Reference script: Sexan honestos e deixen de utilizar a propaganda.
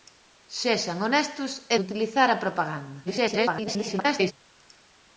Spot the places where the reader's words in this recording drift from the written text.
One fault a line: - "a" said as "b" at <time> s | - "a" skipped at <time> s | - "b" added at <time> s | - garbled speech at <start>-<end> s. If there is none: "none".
- "deixen" skipped at 1.8 s
- garbled speech at 3.1-4.3 s